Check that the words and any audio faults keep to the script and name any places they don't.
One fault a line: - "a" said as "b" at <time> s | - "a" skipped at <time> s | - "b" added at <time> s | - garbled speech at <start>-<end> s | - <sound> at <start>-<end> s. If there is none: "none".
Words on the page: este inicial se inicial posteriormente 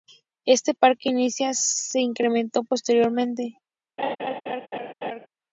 - "parque" added at 0.7 s
- "inicial" said as "incrementó" at 2.0 s
- laugh at 4.0-5.3 s